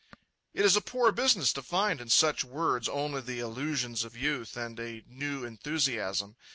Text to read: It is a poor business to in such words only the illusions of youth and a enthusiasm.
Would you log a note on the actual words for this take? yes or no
yes